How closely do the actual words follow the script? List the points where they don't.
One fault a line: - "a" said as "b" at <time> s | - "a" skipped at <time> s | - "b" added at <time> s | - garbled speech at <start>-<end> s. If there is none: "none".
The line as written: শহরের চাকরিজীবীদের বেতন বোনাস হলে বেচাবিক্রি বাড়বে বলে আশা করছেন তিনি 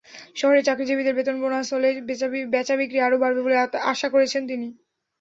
- "আরও" added at 3.0 s